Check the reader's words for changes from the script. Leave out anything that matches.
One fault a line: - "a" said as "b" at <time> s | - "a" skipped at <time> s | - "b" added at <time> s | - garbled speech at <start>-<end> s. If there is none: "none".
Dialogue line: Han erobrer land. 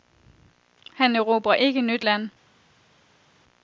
- "ikke nyt" added at 1.5 s